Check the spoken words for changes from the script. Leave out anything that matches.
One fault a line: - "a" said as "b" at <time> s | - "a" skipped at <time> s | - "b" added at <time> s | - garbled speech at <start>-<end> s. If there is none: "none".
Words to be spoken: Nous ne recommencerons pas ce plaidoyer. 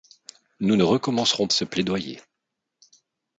- "pas" skipped at 1.5 s